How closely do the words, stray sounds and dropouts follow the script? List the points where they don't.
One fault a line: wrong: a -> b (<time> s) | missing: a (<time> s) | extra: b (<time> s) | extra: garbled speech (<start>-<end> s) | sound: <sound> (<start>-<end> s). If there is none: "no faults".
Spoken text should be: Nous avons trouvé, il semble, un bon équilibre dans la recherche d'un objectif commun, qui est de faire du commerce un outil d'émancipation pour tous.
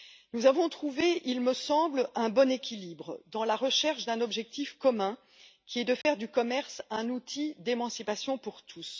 extra: me (1.4 s)
sound: dropout (6.0-6.1 s)